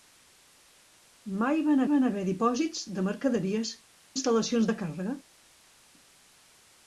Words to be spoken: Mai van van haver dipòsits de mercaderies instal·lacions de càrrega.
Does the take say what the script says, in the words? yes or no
yes